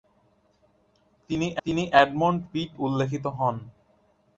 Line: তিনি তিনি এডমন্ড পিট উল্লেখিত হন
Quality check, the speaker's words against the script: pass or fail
pass